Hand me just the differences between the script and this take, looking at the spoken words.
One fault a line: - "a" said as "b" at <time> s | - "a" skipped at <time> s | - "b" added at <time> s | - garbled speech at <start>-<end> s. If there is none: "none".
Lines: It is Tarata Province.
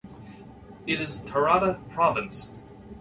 none